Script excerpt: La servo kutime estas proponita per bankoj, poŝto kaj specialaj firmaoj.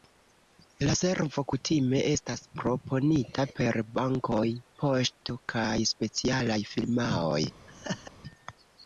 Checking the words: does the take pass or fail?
pass